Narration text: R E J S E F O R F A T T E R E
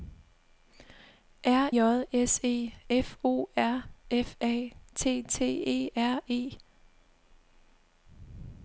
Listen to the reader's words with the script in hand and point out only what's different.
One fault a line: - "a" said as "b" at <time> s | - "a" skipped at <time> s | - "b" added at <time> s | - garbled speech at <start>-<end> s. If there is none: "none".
- "E" skipped at 1.7 s